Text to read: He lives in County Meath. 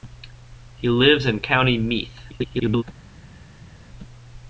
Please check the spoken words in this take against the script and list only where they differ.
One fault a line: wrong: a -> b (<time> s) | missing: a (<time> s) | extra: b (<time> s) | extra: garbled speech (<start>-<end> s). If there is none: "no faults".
extra: garbled speech (2.3-2.8 s)